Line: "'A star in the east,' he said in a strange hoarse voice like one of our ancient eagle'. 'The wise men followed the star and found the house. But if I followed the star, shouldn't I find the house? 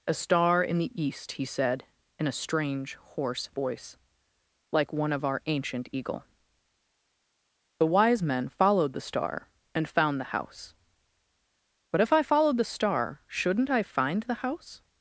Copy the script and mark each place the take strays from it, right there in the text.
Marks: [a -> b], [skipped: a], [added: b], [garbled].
"'A star in the east,' he said in a strange hoarse voice like one of our ancient eagle'. 'The wise men followed the star and found the house. But if I followed the star, shouldn't I find the house?